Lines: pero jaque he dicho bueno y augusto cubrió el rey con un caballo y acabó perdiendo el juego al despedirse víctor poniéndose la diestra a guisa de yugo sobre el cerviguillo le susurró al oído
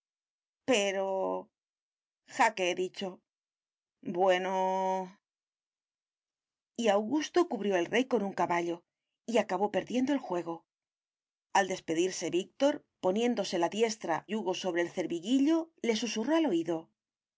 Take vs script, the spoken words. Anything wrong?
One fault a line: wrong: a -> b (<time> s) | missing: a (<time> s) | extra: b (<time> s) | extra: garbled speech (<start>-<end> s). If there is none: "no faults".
missing: a guisa de (14.3 s)